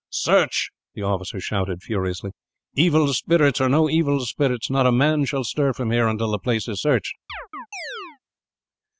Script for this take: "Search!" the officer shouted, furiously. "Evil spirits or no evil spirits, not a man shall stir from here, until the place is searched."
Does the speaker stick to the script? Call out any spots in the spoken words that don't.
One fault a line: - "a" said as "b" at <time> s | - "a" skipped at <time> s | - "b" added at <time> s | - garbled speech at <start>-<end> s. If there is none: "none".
none